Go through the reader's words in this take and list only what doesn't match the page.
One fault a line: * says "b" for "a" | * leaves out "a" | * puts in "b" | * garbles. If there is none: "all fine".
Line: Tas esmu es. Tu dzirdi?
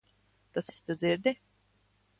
* leaves out "esmu"